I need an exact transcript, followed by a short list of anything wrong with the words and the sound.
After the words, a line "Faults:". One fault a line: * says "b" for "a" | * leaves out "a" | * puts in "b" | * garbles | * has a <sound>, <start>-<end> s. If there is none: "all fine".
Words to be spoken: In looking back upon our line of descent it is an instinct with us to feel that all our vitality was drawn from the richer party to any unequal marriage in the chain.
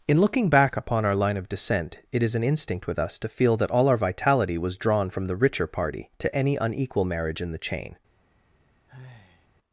In looking back upon our line of descent it is an instinct with us to feel that all our vitality was drawn from the richer party to any unequal marriage in the chain.
Faults:
* has a sigh, 8.9-9.5 s